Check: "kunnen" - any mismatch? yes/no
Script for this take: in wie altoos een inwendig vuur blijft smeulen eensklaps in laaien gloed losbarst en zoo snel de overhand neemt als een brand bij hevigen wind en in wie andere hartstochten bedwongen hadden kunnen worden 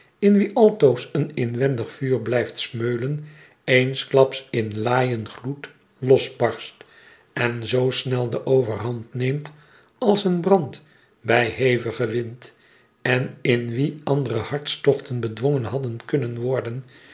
no